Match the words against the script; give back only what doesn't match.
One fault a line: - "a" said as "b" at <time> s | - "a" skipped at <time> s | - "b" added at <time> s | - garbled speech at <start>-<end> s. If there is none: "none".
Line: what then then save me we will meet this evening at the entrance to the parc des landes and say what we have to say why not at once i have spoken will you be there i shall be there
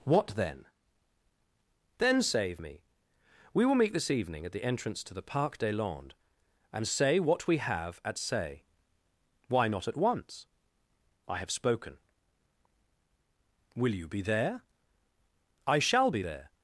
- "to" said as "at" at 8.0 s